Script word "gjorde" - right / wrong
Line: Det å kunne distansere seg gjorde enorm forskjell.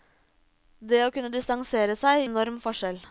wrong